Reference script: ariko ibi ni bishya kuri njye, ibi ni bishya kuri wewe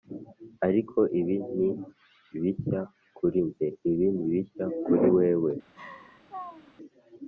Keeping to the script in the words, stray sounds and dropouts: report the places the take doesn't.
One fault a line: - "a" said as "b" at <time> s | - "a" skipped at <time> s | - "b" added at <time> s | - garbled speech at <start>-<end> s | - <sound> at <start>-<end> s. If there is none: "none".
- laugh at 5.7-6.8 s